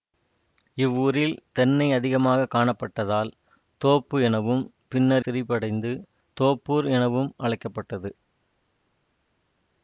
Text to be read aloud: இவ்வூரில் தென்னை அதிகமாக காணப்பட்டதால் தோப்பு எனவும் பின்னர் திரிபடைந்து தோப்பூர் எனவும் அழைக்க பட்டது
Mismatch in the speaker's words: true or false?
false